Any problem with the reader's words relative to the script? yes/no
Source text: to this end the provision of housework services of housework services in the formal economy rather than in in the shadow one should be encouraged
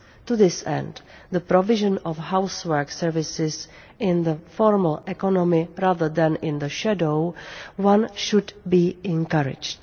yes